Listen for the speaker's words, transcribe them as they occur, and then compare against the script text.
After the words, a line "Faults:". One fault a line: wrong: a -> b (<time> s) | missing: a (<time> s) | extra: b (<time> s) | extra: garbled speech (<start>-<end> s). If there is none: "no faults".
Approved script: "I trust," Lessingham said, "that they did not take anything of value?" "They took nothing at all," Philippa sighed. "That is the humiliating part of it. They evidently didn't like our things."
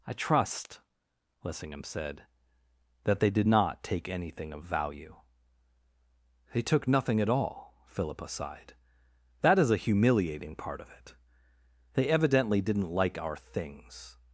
"I trust," Lessingham said, "that they did not take anything of value?" "They took nothing at all," Philippa sighed. "That is a humiliating part of it. They evidently didn't like our things."
Faults:
wrong: the -> a (9.7 s)